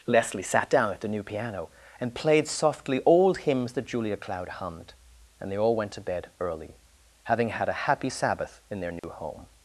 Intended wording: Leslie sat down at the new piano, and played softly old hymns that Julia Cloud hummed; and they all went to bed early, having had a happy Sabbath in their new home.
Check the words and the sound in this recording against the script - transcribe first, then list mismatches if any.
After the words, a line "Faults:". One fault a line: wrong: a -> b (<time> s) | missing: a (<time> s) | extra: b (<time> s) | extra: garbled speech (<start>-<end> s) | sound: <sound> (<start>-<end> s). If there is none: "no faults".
Leslie sat down at the new piano, and played softly old hymns that Julia Cloud hummed; and they all went to bed early, having had a happy Sabbath in their new home.
Faults:
sound: dropout (9.0-9.0 s)